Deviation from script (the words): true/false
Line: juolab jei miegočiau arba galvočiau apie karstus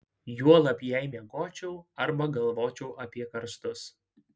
false